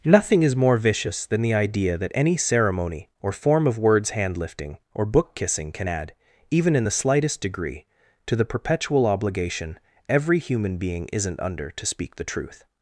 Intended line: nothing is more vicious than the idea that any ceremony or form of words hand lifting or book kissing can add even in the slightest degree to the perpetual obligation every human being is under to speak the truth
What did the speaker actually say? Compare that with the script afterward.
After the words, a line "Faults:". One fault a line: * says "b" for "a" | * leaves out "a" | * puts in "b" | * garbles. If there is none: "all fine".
nothing is more vicious than the idea that any ceremony or form of words hand lifting or book kissing can add even in the slightest degree to the perpetual obligation every human being isn't under to speak the truth
Faults:
* says "isn't" for "is"